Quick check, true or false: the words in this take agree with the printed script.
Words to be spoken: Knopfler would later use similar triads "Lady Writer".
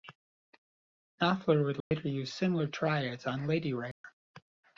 false